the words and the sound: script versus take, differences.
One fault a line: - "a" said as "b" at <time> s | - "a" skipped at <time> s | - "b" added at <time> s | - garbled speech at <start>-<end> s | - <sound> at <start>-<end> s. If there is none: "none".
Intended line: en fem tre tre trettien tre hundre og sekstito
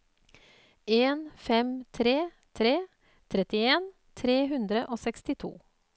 none